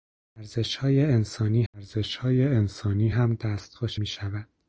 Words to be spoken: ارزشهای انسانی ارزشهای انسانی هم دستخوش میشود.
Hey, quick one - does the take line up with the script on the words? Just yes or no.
yes